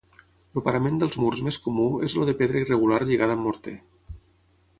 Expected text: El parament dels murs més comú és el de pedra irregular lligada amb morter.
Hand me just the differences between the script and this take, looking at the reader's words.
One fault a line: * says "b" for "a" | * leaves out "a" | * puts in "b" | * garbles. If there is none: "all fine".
all fine